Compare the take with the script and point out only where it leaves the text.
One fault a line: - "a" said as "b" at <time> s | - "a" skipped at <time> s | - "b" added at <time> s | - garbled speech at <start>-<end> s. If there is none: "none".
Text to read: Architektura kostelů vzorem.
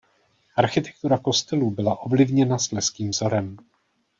- "byla ovlivněna slezským" added at 1.7 s